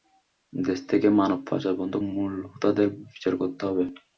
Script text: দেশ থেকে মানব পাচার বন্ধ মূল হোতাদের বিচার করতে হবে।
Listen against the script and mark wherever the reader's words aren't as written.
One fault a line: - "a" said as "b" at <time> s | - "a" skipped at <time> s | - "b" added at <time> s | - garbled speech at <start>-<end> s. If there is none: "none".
none